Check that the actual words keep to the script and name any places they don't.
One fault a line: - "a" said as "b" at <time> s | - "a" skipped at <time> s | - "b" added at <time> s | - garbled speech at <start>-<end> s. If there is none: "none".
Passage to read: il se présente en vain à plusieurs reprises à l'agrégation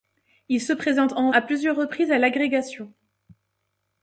- "vain" skipped at 1.3 s